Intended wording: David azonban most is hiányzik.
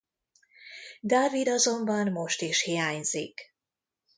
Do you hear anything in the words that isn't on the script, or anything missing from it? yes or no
no